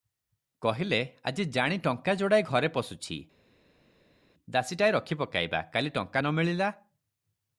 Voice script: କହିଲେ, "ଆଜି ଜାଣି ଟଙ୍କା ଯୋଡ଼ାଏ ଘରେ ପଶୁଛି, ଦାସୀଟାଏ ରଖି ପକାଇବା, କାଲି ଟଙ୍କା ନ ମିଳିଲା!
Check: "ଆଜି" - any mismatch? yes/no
no